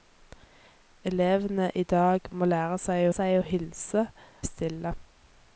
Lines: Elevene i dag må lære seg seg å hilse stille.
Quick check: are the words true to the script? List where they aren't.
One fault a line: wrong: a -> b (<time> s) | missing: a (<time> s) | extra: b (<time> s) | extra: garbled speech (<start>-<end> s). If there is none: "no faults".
no faults